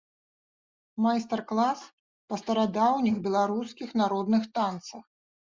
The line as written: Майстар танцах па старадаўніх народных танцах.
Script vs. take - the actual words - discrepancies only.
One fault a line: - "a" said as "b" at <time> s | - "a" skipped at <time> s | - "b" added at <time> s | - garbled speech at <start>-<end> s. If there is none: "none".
- "танцах" said as "клас" at 1.5 s
- "беларускіх" added at 3.3 s